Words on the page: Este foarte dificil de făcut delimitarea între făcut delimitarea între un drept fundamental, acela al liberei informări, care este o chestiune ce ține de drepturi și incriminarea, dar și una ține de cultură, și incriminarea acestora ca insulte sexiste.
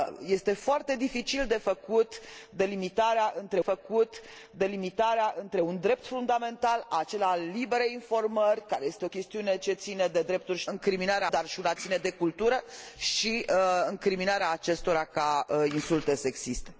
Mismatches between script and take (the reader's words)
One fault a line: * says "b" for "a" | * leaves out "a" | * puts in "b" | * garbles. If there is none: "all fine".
all fine